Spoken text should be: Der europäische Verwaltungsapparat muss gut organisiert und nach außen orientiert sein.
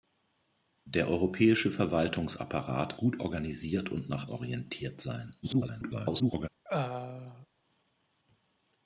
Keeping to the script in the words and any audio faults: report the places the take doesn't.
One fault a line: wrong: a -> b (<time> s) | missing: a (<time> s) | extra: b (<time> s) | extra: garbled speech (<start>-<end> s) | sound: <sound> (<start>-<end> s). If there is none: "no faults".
missing: muss (3.0 s)
missing: außen (4.3 s)
extra: garbled speech (5.4-6.5 s)
sound: throat clearing (6.6-7.5 s)